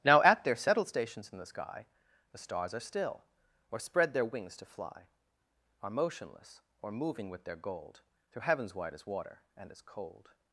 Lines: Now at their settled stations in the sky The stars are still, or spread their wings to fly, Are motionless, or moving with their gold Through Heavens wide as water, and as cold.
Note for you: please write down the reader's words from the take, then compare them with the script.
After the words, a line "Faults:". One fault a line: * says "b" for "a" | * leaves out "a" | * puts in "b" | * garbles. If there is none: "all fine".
Now at their settled stations in the sky The stars are still, or spread their wings to fly, Are motionless, or moving with their gold Through Heavens wide as water, and as cold.
Faults:
all fine